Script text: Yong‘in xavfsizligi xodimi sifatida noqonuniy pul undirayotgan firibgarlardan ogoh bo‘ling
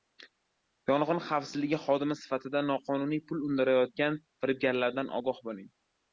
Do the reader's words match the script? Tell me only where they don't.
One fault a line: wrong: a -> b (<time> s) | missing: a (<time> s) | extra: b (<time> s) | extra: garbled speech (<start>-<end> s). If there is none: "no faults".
no faults